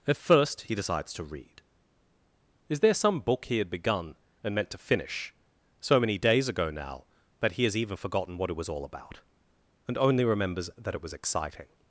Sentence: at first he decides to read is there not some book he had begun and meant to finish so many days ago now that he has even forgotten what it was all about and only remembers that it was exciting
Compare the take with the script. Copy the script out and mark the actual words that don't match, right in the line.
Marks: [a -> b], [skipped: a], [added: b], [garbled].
at first he decides to read is there [skipped: not] some book he had begun and meant to finish so many days ago now that he has even forgotten what it was all about and only remembers that it was exciting